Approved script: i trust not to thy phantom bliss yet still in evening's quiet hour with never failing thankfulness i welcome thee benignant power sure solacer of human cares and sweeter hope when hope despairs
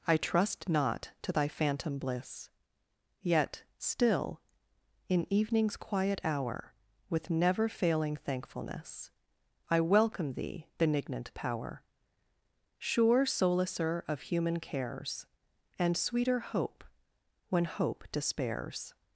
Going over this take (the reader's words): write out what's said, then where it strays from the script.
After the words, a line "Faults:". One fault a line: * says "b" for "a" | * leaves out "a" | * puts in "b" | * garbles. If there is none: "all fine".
i trust not to thy phantom bliss yet still in evening's quiet hour with never failing thankfulness i welcome thee benignant power sure solacer of human cares and sweeter hope when hope despairs
Faults:
all fine